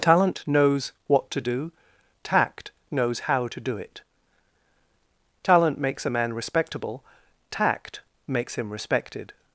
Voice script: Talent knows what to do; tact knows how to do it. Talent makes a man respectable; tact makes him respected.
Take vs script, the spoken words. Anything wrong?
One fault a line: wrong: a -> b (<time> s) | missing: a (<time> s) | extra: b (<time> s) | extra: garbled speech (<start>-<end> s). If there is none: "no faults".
no faults